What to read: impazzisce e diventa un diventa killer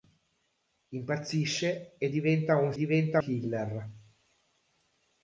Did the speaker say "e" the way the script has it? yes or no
yes